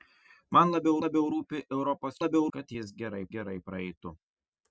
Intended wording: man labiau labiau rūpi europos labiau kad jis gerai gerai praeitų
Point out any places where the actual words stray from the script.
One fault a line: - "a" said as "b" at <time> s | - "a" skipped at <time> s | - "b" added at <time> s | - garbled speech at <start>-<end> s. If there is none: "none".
none